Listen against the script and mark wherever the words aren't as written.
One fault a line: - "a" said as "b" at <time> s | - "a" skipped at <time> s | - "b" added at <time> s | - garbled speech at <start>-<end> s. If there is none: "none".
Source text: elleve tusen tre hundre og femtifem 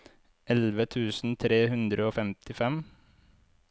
none